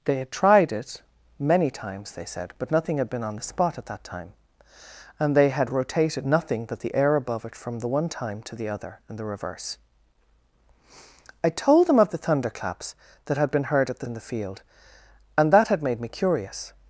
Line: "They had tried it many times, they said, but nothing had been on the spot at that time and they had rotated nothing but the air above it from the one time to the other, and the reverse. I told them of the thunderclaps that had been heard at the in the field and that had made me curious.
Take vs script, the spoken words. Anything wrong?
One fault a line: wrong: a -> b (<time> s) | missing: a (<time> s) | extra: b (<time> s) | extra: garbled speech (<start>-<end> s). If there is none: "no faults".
no faults